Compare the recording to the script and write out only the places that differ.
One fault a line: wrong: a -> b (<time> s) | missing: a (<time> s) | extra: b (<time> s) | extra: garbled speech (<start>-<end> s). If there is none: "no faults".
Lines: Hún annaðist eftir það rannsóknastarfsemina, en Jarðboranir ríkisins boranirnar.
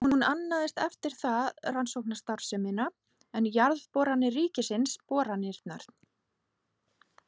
no faults